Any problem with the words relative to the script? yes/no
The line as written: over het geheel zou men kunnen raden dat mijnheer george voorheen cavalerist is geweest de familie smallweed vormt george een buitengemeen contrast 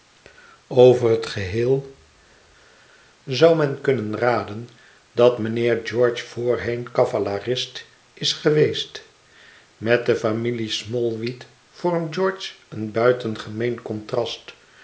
yes